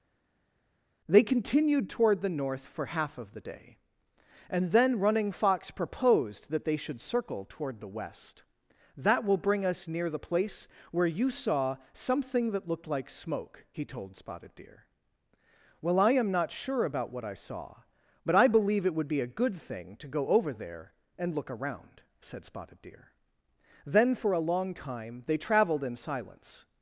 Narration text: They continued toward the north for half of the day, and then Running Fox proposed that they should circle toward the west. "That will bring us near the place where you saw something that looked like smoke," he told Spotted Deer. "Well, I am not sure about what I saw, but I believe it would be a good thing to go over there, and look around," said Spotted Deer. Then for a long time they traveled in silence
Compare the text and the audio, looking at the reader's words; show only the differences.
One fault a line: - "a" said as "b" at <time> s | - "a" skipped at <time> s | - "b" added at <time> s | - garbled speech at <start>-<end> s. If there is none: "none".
none